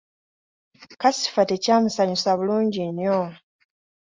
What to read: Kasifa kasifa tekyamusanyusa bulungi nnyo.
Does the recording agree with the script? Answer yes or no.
no